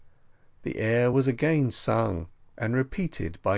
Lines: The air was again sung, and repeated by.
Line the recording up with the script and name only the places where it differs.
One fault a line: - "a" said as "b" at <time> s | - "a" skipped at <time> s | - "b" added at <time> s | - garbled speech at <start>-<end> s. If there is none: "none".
none